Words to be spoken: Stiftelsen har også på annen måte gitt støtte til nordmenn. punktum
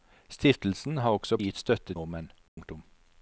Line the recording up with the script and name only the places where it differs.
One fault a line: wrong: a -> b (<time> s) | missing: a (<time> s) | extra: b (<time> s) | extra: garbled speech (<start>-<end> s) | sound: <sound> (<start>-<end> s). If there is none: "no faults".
missing: på annen måte (1.4 s)
missing: til (1.9 s)
sound: dropout (2.5-2.6 s)